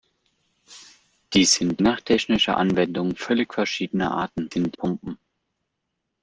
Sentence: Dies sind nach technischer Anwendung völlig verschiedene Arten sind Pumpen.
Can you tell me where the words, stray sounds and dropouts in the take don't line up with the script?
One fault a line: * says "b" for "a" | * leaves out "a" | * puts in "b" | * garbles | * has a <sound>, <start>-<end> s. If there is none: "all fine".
all fine